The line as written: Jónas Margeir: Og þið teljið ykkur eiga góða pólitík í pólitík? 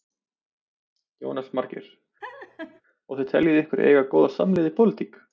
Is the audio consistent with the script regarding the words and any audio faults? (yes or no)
no